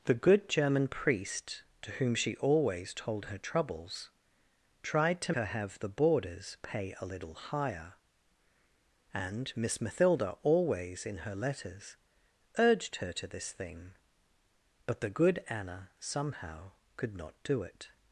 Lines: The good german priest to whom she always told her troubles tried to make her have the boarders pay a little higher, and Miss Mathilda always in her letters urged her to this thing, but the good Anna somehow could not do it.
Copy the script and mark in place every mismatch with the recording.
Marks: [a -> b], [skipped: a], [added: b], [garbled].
The good german priest to whom she always told her troubles tried to [skipped: make] her have the boarders pay a little higher, and Miss Mathilda always in her letters urged her to this thing, but the good Anna somehow could not do it.